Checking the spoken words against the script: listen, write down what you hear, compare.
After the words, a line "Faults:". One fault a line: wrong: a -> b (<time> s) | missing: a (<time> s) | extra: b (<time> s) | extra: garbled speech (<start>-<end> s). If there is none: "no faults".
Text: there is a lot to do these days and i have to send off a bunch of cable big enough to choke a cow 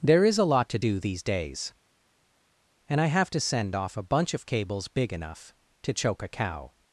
there is a lot to do these days and i have to send off a bunch of cables big enough to choke a cow
Faults:
wrong: cable -> cables (4.4 s)